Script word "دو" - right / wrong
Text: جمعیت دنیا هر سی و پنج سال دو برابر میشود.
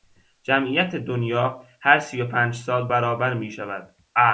wrong